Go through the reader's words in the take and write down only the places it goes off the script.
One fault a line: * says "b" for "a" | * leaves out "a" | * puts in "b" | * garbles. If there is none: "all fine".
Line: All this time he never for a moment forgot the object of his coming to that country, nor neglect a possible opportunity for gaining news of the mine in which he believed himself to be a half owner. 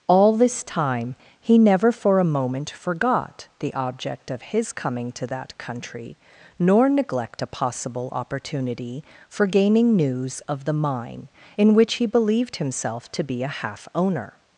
all fine